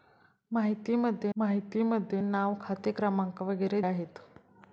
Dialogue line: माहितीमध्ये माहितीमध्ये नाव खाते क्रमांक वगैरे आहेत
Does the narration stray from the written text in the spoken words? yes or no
no